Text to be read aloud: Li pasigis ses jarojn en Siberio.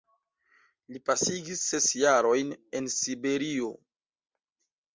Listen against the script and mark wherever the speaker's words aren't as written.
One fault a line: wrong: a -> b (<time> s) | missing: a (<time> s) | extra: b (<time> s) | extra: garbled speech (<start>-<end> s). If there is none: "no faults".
no faults